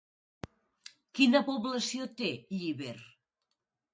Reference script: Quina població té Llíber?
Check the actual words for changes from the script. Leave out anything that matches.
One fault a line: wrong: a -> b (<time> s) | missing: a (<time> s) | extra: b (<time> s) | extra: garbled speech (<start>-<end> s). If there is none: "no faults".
no faults